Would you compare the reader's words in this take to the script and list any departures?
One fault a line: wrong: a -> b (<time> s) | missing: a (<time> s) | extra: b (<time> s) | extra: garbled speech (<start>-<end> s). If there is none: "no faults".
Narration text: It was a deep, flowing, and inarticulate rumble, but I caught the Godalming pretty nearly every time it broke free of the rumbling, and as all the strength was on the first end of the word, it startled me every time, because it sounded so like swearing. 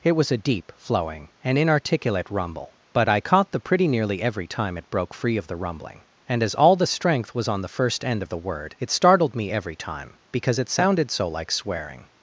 missing: Godalming (3.6 s)